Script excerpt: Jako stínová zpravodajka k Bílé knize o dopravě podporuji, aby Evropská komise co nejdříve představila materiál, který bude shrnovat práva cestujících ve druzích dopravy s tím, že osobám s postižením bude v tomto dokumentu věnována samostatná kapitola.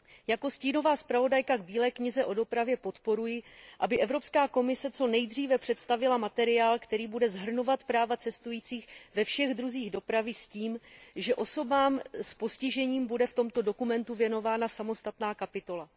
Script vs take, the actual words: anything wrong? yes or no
yes